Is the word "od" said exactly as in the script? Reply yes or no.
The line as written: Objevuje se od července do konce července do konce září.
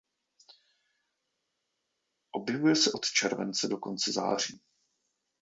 yes